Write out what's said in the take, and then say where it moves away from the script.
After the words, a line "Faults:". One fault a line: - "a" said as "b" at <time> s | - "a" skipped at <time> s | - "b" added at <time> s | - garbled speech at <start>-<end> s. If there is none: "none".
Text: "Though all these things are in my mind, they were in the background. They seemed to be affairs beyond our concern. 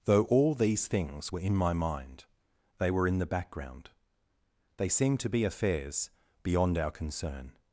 "Though all these things were in my mind, they were in the background. They seemed to be affairs beyond our concern.
Faults:
- "are" said as "were" at 1.3 s